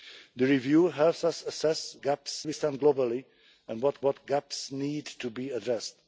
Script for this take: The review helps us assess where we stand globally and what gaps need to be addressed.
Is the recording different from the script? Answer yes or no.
yes